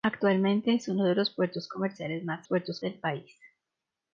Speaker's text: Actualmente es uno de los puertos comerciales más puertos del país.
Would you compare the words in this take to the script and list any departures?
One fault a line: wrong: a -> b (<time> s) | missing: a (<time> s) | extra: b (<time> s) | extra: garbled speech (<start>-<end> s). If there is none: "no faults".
no faults